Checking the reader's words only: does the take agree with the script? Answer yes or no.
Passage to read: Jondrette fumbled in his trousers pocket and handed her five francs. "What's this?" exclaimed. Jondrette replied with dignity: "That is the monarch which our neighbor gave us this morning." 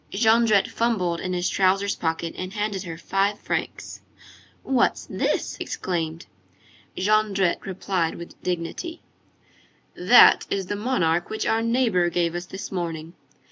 yes